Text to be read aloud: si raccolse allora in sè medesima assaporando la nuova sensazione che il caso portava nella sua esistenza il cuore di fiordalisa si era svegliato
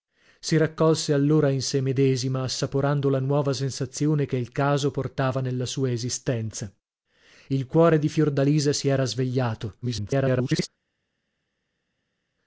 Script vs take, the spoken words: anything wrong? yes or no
yes